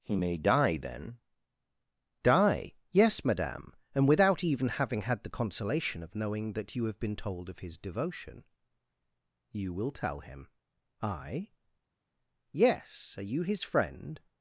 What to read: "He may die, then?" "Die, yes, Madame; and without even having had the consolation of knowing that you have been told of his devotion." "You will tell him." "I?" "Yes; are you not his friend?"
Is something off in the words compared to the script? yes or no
yes